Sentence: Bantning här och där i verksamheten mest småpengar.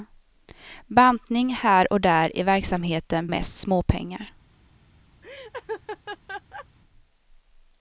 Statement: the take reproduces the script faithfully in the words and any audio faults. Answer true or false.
false